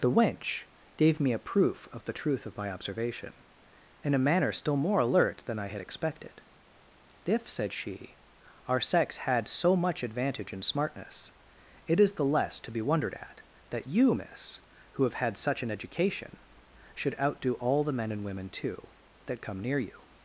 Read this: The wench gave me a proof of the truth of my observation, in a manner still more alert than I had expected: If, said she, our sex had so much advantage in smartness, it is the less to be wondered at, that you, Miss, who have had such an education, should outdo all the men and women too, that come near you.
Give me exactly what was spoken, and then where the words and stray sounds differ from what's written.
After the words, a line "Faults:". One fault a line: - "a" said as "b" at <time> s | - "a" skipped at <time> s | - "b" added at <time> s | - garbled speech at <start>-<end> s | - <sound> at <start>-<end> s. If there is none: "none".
The wench gave me a proof of the truth of my observation, in a manner still more alert than I had expected: If, said she, our sex had so much advantage in smartness, it is the less to be wondered at, that you, Miss, who have had such an education, should outdo all the men and women too, that come near you.
Faults:
none